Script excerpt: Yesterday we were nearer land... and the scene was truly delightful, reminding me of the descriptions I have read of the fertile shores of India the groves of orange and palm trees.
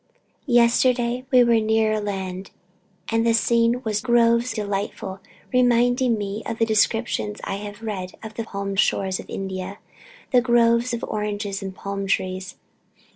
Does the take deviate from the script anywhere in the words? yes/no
yes